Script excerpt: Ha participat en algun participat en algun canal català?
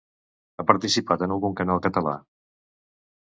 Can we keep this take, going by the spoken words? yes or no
no